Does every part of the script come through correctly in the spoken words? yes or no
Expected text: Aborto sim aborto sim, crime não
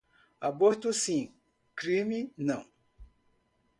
no